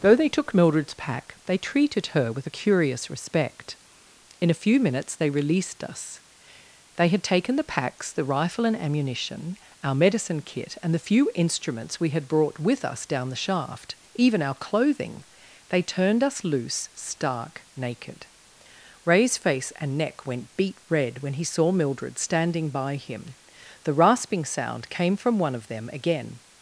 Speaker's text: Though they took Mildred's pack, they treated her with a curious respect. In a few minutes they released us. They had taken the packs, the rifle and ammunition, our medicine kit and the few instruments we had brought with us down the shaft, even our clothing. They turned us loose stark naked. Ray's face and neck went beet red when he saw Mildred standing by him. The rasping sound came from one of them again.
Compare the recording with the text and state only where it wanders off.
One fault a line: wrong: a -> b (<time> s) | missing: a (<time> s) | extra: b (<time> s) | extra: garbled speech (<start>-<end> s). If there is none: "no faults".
no faults